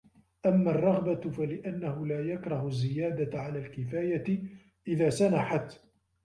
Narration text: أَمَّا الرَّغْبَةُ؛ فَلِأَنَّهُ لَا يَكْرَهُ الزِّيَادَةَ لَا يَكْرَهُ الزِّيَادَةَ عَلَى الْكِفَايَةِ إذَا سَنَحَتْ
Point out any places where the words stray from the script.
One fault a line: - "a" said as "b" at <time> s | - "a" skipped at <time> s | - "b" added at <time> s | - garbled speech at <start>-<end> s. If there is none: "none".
- "لَا يَكْرَهُ الزِّيَادَةَ" skipped at 3.4 s